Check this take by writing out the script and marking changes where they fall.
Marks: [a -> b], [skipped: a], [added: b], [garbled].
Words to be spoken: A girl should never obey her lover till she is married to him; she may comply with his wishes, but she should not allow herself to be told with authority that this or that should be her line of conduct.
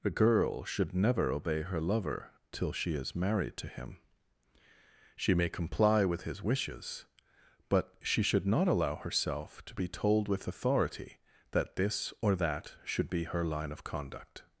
A girl should never obey her lover till she is married to him; she may comply with his wishes, but she should not allow herself to be told with authority that this or that should be her line of conduct.